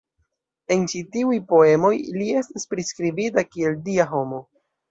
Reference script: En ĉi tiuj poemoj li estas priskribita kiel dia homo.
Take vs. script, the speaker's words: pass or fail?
pass